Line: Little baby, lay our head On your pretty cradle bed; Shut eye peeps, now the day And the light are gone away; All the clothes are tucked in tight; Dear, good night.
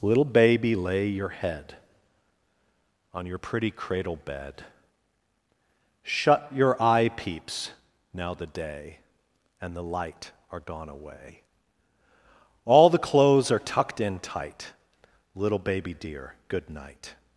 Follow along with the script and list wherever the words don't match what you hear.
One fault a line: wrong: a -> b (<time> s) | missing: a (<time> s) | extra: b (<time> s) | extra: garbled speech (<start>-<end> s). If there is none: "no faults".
wrong: our -> your (1.1 s)
extra: your (6.5 s)
extra: Little baby (15.3 s)